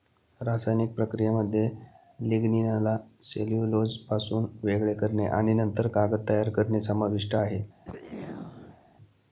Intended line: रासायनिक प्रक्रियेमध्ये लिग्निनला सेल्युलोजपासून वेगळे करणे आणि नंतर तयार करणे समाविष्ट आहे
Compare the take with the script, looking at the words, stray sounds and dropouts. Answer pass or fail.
fail